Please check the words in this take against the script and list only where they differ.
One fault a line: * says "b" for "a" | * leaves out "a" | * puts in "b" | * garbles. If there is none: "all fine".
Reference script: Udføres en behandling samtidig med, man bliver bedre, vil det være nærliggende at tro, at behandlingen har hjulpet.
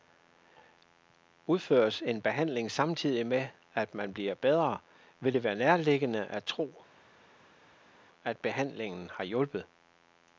* puts in "at"